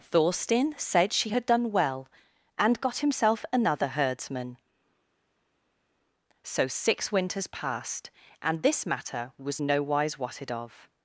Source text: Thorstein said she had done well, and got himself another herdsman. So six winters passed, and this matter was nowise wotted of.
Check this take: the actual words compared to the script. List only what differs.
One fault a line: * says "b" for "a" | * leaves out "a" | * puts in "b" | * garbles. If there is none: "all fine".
all fine